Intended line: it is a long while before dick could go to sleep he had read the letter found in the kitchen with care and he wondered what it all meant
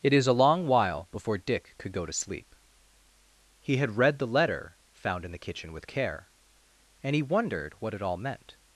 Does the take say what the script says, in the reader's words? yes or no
yes